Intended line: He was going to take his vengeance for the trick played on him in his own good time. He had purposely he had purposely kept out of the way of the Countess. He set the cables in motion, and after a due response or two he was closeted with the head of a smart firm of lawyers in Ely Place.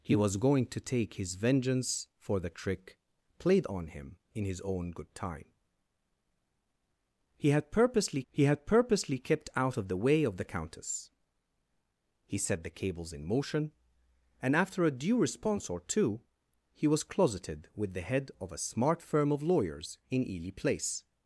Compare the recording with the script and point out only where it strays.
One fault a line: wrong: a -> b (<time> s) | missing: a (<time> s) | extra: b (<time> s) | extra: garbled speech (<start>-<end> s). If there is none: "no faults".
no faults